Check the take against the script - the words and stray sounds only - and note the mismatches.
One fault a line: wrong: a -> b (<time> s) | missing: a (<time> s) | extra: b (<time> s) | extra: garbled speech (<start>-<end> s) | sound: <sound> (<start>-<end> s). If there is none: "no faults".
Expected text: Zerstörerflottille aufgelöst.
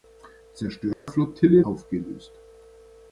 sound: dropout (0.9-1.1 s)